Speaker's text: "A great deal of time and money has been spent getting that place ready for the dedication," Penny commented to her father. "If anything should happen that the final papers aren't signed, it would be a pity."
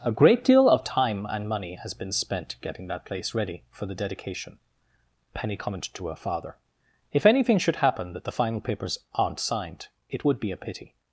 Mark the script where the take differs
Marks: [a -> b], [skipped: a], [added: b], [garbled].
"A great deal of time and money has been spent getting that place ready for the dedication," Penny commented to her father. "If anything should happen that the final papers aren't signed, it would be a pity."